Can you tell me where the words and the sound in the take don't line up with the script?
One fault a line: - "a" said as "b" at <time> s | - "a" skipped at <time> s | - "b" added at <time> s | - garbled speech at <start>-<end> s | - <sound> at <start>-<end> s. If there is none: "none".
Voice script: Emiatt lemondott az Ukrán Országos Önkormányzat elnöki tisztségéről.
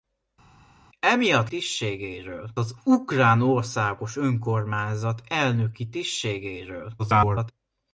- "lemondott" said as "tisztségéről" at 1.5 s
- garbled speech at 7.0-7.5 s